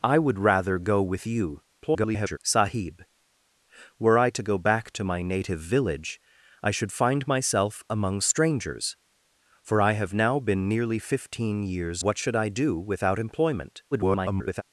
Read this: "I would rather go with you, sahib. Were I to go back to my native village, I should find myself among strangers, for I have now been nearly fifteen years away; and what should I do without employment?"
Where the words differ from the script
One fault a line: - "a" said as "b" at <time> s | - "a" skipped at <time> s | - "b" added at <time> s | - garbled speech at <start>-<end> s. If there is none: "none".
- garbled speech at 1.8-2.4 s
- "away and" skipped at 12.0 s
- garbled speech at 13.9-14.6 s